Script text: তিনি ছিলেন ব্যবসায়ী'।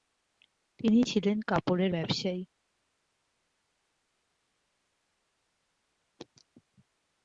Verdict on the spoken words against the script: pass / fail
fail